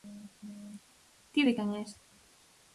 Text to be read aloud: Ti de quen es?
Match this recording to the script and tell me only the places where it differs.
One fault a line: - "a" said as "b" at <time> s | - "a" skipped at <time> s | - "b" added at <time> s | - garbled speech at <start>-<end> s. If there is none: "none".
none